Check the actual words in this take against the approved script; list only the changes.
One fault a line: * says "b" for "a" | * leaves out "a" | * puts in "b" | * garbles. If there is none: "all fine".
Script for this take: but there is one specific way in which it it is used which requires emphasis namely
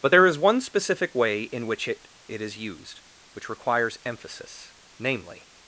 all fine